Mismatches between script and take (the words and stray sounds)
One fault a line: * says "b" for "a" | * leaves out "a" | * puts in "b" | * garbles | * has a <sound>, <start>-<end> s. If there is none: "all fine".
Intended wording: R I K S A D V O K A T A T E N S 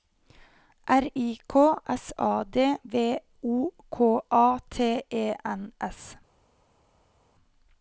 * leaves out "A T"